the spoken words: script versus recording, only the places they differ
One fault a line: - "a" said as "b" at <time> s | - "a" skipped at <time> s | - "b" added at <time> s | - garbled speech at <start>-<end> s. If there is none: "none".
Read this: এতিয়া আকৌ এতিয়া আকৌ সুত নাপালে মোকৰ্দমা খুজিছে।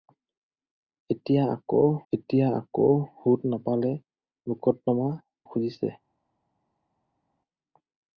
none